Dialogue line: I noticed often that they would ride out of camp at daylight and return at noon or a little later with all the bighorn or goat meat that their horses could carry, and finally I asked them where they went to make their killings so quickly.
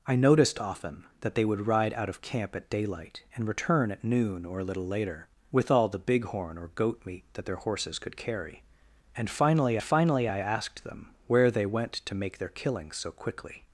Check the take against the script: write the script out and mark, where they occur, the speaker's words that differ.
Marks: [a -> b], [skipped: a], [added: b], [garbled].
I noticed often that they would ride out of camp at daylight and return at noon or a little later with all the bighorn or goat meat that their horses could carry, and finally [added: finally] I asked them where they went to make their killings so quickly.